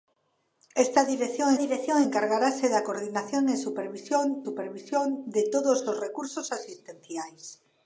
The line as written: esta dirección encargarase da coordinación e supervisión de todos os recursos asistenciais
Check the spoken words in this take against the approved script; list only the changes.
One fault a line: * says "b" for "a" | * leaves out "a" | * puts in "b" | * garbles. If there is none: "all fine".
* puts in "dirección"
* puts in "supervisión"